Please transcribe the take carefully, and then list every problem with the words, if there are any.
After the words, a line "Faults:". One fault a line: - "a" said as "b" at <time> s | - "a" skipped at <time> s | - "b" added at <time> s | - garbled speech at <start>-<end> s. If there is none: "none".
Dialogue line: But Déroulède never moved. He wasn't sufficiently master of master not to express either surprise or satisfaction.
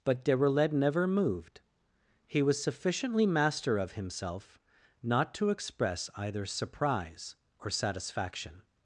But Déroulède never moved. He was sufficiently master of himself not to express either surprise or satisfaction.
Faults:
- "wasn't" said as "was" at 2.4 s
- "master" said as "himself" at 3.9 s